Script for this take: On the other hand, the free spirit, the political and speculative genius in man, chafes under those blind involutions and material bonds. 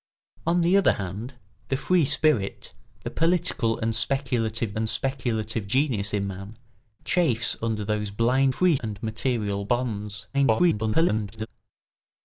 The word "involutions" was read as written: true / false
false